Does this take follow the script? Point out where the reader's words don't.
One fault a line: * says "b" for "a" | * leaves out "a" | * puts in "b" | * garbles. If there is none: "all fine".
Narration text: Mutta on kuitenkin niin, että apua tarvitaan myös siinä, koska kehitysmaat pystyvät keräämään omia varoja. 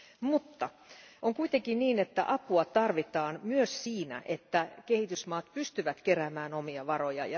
* says "että" for "koska"